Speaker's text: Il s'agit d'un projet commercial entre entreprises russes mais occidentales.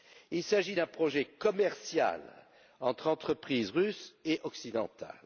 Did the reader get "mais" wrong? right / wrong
wrong